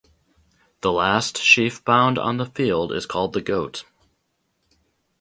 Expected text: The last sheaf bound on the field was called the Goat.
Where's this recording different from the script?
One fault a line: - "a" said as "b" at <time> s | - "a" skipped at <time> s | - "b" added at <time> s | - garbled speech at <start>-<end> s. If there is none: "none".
- "was" said as "is" at 2.9 s